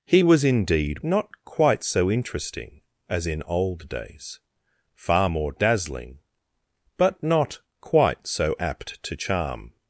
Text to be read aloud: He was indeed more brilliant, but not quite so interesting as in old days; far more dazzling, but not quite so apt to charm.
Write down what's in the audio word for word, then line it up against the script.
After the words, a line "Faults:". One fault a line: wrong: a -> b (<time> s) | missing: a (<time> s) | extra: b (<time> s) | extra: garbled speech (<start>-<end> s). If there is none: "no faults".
He was indeed not quite so interesting as in old days; far more dazzling, but not quite so apt to charm.
Faults:
missing: more brilliant but (1.0 s)